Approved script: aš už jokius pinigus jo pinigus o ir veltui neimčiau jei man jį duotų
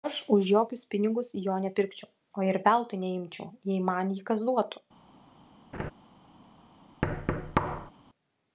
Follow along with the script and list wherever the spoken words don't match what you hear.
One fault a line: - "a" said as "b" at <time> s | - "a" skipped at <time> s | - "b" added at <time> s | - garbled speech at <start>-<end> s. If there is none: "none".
- "pinigus" said as "nepirkčiau" at 1.6 s
- "kas" added at 4.3 s